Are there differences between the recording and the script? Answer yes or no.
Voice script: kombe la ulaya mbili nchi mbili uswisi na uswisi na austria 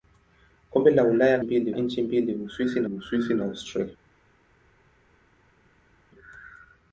no